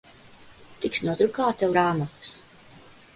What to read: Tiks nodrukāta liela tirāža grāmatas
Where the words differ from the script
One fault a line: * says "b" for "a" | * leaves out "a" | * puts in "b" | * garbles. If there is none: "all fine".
* leaves out "liela tirāža"